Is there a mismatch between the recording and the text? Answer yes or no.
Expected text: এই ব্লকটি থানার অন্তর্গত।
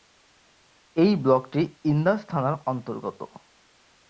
yes